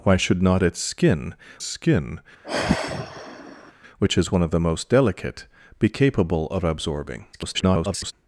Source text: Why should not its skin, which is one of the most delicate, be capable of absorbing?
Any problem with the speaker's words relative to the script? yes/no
yes